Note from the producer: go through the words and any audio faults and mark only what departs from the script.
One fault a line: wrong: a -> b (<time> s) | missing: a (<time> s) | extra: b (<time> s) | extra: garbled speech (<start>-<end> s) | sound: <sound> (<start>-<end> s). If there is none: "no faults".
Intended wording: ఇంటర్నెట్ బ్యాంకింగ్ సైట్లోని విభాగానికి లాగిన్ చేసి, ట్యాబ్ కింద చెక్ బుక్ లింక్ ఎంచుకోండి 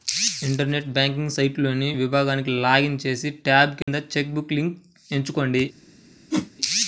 sound: dropout (3.8-3.9 s)
sound: whoosh (6.3-6.5 s)